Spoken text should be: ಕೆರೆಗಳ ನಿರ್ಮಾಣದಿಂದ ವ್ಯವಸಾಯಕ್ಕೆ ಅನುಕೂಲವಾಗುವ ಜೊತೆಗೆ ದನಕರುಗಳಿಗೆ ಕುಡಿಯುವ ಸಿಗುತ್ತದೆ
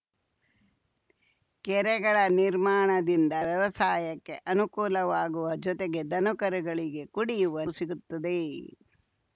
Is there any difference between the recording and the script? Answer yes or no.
no